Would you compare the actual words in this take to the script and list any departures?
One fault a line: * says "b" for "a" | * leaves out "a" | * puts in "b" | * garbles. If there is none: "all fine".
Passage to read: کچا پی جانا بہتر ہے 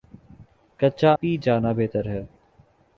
all fine